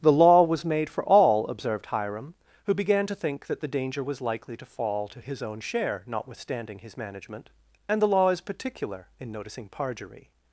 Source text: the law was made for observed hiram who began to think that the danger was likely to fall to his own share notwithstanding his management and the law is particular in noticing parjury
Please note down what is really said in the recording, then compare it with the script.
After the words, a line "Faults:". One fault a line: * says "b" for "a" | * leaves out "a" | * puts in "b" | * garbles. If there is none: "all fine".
the law was made for all observed hiram who began to think that the danger was likely to fall to his own share notwithstanding his management and the law is particular in noticing parjury
Faults:
* puts in "all"